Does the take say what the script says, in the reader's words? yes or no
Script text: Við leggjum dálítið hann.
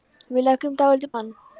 yes